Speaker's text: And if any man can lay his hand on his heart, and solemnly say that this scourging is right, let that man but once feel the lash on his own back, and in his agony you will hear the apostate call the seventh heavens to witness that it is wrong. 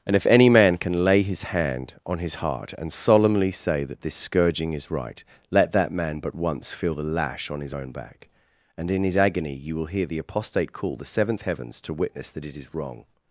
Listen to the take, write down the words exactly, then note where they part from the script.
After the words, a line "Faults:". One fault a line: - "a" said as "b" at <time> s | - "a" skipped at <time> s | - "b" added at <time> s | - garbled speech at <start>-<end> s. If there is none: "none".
And if any man can lay his hand on his heart, and solemnly say that this scourging is right, let that man but once feel the lash on his own back, and in his agony you will hear the apostate call the seventh heavens to witness that it is wrong.
Faults:
none